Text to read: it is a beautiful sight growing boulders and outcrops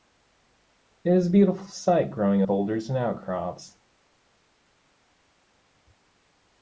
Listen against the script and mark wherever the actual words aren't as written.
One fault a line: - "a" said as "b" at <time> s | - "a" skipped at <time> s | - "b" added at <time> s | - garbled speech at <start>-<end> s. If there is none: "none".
none